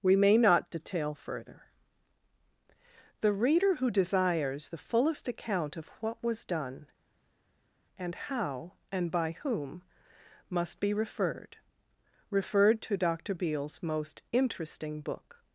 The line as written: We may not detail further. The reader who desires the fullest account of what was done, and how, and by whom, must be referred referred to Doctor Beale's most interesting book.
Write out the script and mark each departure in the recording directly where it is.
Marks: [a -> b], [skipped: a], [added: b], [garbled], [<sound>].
We may not detail further. The reader who desires the fullest account of what was done, and how, and by whom, must be referred referred to Doctor Beale's most interesting book.